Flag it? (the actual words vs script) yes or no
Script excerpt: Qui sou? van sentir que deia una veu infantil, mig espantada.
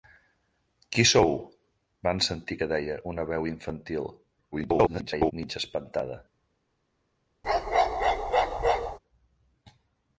yes